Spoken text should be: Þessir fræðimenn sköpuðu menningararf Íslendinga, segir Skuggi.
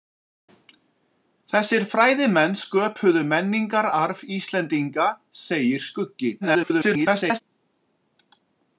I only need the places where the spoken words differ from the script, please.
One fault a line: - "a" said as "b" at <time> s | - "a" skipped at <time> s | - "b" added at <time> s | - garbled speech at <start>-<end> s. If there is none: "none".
- garbled speech at 6.4-7.4 s